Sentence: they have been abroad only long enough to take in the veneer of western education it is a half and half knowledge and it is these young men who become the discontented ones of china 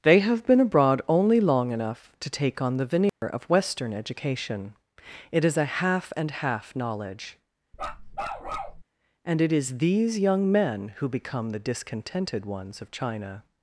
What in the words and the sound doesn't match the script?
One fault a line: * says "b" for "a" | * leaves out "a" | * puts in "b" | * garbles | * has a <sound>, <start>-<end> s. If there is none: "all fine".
* says "on" for "in"
* has a dropout, 3.1-3.2 s
* has a bark, 7.7-8.8 s